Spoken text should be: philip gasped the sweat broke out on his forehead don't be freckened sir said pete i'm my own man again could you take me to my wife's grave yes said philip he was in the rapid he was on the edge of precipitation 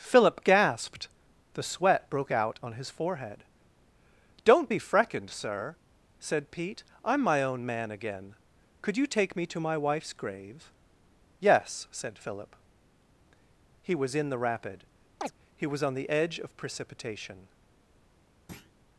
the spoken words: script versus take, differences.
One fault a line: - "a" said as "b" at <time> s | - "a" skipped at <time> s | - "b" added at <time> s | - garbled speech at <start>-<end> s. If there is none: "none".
none